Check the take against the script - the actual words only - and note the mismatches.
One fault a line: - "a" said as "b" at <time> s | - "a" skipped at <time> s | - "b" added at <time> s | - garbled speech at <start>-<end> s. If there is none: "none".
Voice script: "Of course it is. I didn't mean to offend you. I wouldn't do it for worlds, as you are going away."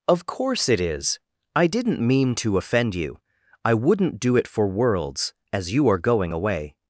none